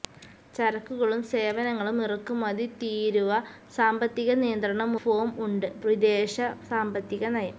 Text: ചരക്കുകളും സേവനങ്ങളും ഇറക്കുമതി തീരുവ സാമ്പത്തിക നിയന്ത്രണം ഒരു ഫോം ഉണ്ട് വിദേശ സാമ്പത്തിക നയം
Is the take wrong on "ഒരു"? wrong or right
wrong